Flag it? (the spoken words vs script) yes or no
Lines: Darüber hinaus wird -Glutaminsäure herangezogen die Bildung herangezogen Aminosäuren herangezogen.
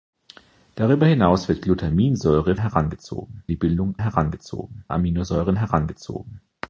no